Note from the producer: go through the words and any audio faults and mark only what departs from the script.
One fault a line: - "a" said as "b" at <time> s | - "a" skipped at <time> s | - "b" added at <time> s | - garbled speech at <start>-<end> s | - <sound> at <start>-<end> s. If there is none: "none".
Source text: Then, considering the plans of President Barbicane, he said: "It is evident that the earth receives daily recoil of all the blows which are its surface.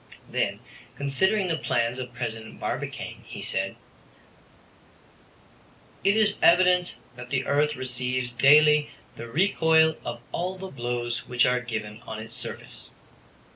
- "the" added at 9.2 s
- "given on" added at 11.6 s